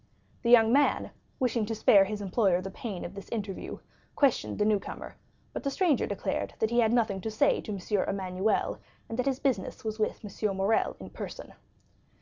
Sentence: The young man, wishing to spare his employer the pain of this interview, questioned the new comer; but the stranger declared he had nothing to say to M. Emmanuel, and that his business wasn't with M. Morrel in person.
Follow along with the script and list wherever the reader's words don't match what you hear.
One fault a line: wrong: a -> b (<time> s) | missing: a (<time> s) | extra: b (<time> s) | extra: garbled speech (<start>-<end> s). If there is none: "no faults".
extra: that (6.6 s)
wrong: wasn't -> was (9.8 s)